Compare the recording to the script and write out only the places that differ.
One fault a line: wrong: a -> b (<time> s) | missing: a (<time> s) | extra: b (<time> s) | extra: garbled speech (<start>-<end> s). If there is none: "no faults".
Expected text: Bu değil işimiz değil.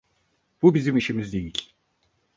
wrong: değil -> bizim (0.7 s)